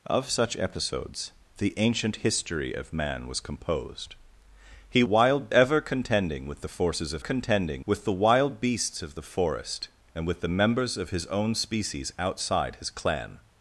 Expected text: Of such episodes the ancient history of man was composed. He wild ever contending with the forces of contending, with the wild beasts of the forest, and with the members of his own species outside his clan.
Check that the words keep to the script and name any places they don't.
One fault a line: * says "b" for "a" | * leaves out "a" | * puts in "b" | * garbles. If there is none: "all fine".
all fine